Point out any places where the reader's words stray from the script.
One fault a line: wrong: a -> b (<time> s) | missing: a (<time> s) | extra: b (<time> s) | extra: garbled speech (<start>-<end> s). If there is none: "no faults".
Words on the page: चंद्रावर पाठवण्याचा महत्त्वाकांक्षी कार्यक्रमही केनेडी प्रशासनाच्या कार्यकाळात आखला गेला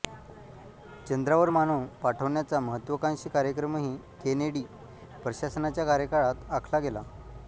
extra: मानव (1.5 s)